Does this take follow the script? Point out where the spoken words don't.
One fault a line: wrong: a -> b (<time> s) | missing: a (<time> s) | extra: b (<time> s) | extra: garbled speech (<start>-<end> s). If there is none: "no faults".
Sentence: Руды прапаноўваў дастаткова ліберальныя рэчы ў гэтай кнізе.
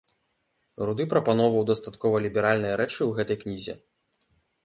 no faults